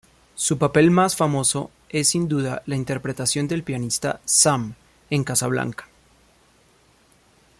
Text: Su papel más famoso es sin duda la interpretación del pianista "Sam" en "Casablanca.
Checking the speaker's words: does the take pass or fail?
pass